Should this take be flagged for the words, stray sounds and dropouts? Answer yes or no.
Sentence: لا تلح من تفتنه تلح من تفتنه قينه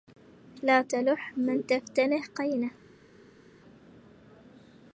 yes